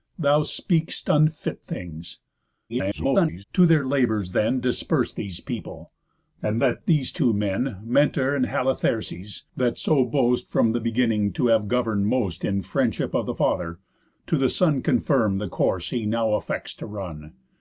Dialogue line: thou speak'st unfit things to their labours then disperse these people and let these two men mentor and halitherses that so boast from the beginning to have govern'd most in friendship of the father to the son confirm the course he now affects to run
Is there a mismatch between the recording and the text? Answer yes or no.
yes